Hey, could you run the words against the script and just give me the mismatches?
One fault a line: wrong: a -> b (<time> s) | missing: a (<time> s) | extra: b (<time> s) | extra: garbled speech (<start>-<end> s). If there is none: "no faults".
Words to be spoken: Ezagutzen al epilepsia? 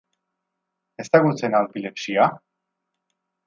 no faults